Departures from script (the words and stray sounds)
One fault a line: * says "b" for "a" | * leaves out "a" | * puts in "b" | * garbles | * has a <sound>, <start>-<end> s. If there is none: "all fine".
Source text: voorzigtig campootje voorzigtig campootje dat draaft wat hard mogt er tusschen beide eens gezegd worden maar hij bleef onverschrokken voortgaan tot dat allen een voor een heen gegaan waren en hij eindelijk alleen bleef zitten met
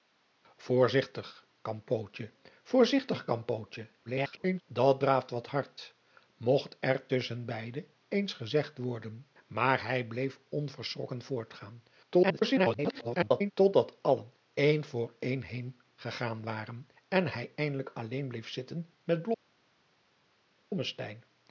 * garbles
* garbles